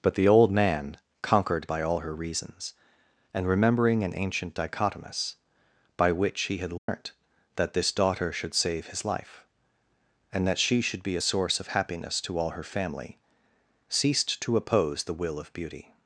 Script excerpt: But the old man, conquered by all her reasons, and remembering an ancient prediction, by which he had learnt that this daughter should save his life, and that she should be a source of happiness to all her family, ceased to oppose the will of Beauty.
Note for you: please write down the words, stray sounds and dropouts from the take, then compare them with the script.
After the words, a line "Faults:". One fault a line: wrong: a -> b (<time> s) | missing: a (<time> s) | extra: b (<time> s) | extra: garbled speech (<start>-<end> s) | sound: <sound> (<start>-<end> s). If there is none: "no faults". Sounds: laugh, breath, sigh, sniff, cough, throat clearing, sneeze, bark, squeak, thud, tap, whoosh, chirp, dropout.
But the old man, conquered by all her reasons, and remembering an ancient dichotomous, by which he had learnt that this daughter should save his life, and that she should be a source of happiness to all her family, ceased to oppose the will of Beauty.
Faults:
wrong: prediction -> dichotomous (4.5 s)
sound: dropout (6.8-6.9 s)